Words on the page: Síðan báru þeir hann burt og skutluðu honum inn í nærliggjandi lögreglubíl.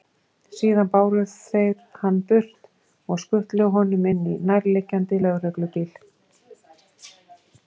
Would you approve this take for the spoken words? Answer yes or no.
yes